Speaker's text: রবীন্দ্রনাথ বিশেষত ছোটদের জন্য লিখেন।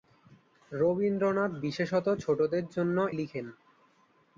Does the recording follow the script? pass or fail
pass